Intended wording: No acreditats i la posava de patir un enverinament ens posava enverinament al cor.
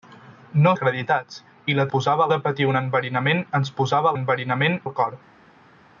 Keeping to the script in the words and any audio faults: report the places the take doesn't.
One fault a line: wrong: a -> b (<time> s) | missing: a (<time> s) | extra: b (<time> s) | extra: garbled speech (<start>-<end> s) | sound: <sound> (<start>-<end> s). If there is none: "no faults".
no faults